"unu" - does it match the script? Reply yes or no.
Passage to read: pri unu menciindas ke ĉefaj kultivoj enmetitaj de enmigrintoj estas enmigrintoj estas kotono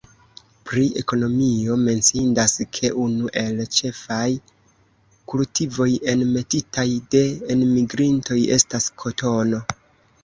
no